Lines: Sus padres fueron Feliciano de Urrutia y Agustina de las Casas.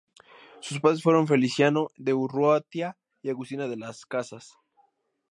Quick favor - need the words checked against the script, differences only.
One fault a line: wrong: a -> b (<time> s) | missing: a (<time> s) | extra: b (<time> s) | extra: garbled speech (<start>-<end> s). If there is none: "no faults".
no faults